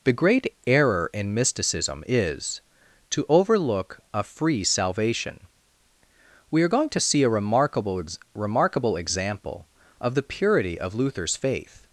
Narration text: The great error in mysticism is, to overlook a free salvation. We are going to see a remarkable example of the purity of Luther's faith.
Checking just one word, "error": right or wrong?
right